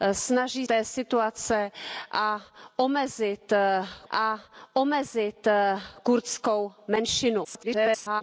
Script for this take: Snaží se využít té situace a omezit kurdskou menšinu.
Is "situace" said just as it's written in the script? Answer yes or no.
no